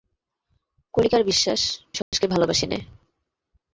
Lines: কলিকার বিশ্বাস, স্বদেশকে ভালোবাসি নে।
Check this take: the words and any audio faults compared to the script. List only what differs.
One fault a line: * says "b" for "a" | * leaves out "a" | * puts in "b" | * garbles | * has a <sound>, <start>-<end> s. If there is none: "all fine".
* has a dropout, 2.0-2.1 s